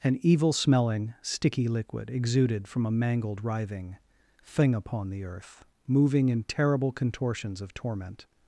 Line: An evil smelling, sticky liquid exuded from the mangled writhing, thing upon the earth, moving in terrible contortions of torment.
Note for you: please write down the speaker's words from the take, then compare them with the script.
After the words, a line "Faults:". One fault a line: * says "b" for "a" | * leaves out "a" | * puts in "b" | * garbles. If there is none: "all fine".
An evil smelling, sticky liquid exuded from a mangled writhing, thing upon the earth, moving in terrible contortions of torment.
Faults:
* says "a" for "the"